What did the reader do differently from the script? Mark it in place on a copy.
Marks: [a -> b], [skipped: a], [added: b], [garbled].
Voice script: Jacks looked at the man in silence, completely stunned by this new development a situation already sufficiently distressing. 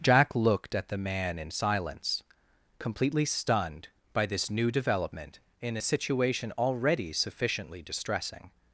[Jacks -> Jack] looked at the man in silence, completely stunned by this new development [added: in] a situation already sufficiently distressing.